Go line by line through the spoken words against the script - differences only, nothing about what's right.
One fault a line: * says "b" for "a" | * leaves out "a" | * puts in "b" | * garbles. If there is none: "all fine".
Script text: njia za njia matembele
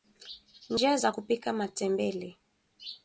* says "kupika" for "njia"